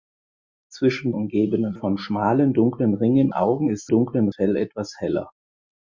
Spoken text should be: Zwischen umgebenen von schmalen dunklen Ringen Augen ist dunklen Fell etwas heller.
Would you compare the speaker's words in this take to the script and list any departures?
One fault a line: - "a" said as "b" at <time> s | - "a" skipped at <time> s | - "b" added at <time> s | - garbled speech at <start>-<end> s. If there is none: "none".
none